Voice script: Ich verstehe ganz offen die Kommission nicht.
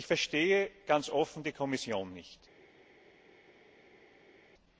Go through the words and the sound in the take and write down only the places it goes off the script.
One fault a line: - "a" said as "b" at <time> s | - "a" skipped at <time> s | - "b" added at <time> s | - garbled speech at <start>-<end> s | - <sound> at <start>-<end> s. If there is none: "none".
none